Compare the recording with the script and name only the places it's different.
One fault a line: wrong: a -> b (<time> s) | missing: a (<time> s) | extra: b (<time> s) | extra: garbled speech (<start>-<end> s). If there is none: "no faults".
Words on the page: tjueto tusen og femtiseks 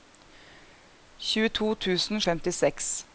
no faults